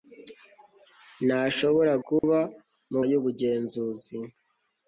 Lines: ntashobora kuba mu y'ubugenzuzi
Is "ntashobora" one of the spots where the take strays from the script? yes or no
no